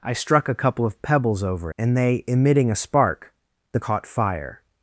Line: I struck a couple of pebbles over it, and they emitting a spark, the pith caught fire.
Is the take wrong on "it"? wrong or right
wrong